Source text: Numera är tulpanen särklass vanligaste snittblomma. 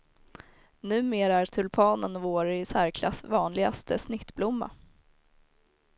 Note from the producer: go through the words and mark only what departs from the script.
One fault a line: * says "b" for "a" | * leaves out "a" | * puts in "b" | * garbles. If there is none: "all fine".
* puts in "vår i"